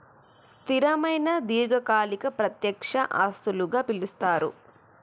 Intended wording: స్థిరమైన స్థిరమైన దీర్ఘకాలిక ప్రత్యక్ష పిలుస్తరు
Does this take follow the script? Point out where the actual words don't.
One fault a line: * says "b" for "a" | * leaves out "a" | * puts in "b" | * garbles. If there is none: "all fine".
* leaves out "స్థిరమైన"
* puts in "ఆస్తులుగా"